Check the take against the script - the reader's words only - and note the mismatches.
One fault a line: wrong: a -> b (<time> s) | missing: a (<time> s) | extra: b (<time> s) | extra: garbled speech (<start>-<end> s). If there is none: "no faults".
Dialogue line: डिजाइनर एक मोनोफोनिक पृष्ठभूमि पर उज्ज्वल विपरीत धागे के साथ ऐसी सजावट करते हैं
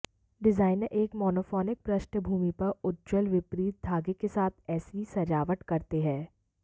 no faults